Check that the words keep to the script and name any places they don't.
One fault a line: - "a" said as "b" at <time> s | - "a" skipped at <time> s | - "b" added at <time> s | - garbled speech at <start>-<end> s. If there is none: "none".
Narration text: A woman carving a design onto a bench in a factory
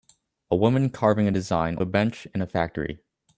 - "onto" skipped at 1.8 s